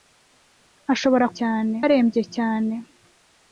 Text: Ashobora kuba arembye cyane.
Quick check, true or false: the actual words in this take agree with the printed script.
false